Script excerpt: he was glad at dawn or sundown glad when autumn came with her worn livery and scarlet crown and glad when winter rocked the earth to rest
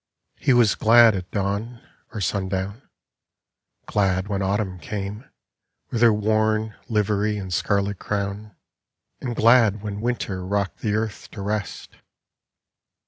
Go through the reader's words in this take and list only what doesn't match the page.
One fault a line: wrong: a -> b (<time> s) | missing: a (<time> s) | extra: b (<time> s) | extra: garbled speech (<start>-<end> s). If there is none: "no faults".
no faults